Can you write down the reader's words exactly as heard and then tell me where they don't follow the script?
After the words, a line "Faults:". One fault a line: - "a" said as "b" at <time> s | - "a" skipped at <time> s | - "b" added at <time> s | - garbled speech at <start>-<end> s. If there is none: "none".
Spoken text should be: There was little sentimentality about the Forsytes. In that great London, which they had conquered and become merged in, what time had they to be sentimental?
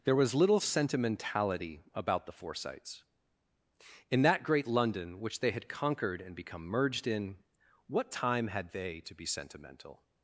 There was little sentimentality about the Forsytes. In that great London, which they had conquered and become merged in, what time had they to be sentimental?
Faults:
none